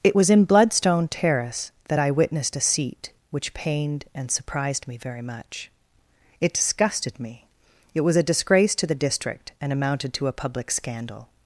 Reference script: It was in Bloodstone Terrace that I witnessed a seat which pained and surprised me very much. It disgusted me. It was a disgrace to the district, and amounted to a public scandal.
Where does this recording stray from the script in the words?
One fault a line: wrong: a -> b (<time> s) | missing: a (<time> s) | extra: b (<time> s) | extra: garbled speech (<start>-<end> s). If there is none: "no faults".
no faults